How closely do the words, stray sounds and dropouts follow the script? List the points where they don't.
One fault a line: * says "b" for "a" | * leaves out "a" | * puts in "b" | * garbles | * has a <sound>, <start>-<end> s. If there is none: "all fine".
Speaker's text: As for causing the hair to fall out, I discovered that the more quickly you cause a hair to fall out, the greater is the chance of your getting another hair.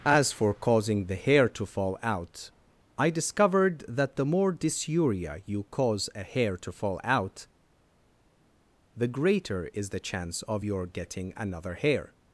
* says "dysuria" for "quickly"